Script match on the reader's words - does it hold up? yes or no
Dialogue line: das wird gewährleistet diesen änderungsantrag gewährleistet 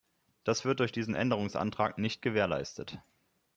no